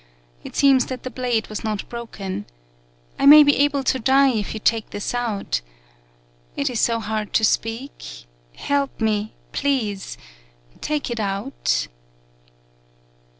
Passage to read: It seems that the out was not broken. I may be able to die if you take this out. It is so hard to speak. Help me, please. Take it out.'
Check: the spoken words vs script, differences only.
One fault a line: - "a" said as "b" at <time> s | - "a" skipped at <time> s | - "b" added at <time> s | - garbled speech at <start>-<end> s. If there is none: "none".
- "out" said as "blade" at 1.1 s